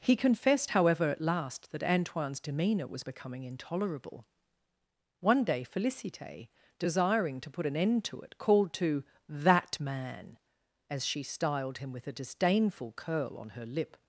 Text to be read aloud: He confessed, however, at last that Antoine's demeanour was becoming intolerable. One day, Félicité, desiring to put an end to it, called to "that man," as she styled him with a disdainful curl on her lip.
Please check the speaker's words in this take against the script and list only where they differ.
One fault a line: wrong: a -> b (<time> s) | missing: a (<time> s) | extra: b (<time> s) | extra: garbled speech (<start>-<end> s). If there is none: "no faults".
no faults